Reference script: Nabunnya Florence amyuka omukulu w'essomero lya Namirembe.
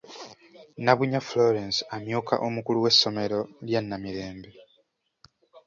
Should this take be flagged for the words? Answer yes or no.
no